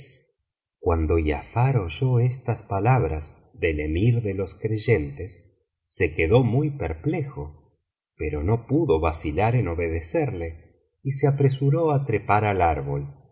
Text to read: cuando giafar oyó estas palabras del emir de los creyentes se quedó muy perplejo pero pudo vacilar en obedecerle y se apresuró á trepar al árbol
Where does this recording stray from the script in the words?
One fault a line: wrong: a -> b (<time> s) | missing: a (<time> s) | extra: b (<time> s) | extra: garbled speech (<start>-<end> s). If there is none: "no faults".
extra: no (8.4 s)